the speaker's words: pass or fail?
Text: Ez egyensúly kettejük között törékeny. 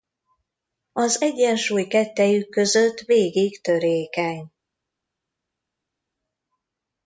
fail